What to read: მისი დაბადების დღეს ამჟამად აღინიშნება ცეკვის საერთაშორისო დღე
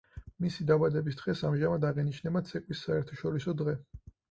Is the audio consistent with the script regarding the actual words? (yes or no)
yes